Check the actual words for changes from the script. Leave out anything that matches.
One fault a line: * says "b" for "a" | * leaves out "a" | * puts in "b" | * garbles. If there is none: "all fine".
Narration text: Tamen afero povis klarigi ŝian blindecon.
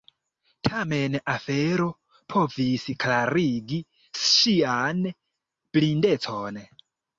all fine